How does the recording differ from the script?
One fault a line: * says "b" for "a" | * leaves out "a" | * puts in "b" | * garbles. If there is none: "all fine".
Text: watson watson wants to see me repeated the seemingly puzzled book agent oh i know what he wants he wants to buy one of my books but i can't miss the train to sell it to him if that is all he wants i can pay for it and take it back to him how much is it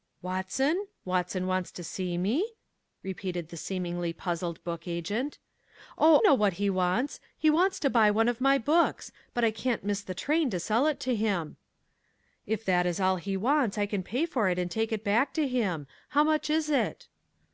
* leaves out "i"